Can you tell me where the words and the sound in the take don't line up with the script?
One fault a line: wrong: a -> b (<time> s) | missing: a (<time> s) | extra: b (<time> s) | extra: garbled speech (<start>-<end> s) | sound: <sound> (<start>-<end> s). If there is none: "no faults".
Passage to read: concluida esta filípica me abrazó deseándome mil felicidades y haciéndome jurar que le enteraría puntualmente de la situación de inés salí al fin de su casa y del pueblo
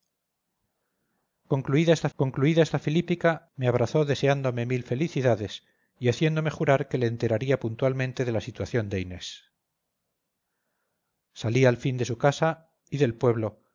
extra: concluida esta (2.2 s)